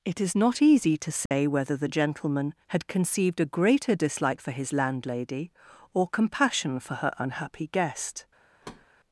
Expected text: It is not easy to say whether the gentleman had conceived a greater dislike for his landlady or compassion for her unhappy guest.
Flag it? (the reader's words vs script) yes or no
no